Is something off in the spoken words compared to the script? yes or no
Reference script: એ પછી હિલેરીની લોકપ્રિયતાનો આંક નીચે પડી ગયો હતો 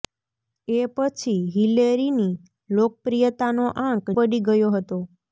yes